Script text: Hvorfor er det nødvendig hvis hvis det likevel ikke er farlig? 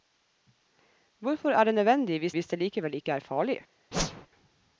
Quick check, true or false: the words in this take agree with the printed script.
true